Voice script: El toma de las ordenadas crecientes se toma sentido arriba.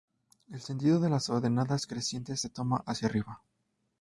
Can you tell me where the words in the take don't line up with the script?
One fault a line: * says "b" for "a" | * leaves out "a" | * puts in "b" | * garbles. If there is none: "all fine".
* says "sentido" for "toma"
* says "hacia" for "sentido"